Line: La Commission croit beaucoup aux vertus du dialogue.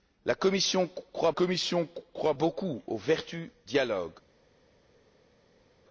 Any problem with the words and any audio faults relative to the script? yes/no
yes